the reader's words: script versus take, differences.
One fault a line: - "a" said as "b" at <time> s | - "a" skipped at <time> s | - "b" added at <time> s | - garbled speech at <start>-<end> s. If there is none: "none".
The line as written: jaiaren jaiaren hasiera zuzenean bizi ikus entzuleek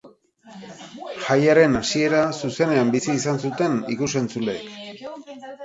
- "jaiaren" skipped at 1.8 s
- "izan zuten" added at 3.2 s